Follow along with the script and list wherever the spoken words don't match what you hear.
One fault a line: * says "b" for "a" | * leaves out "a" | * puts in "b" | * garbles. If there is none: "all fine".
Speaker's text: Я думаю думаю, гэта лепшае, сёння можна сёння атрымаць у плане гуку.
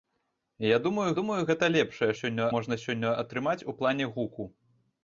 all fine